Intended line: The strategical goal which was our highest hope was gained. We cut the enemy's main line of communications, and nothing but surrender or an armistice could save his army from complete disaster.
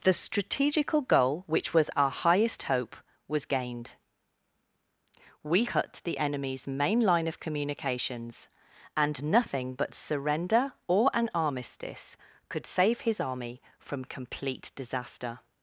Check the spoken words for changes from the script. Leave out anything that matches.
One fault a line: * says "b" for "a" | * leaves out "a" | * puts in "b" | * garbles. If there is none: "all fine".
all fine